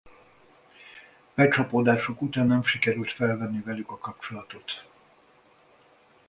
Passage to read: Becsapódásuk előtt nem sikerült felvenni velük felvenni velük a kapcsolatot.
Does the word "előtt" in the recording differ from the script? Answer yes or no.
yes